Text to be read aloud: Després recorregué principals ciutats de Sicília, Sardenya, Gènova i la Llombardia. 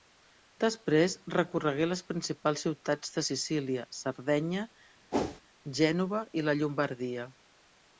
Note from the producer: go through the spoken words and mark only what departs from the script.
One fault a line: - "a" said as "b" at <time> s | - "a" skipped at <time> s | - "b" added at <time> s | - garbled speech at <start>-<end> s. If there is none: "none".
- "les" added at 1.9 s